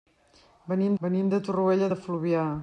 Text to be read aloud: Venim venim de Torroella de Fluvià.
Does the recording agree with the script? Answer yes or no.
yes